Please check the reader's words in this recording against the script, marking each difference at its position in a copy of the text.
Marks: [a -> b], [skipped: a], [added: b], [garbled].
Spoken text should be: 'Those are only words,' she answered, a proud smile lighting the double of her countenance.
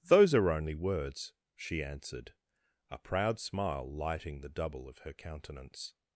'Those are only words,' she answered, a proud smile lighting the double of her countenance.